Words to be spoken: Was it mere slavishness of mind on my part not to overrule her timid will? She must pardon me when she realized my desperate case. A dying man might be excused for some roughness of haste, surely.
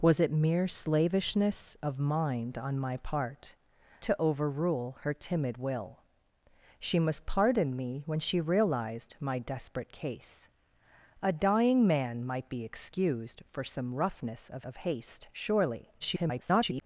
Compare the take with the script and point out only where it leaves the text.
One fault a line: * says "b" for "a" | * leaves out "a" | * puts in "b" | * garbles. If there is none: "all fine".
* leaves out "not"
* puts in "of"
* garbles